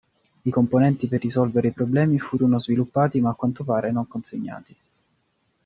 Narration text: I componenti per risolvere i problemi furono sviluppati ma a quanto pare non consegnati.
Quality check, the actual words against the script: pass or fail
pass